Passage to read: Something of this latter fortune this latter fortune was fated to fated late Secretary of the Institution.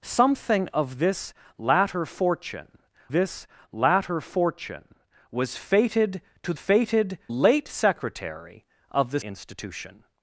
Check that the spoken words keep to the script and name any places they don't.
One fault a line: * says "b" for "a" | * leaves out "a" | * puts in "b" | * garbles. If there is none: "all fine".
all fine